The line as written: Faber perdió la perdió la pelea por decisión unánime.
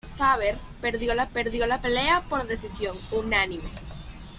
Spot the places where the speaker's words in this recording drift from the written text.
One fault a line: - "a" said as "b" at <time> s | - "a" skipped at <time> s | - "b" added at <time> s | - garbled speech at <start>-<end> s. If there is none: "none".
none